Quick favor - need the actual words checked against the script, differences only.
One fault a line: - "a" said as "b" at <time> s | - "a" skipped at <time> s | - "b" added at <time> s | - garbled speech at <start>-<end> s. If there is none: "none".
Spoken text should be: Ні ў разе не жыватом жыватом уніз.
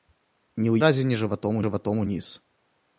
none